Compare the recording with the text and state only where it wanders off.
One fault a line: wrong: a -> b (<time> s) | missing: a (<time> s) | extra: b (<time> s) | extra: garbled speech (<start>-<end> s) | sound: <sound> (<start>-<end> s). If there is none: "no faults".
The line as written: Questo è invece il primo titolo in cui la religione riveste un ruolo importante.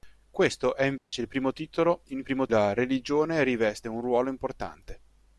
sound: dropout (1.0-1.1 s)
wrong: cui -> primo (2.2 s)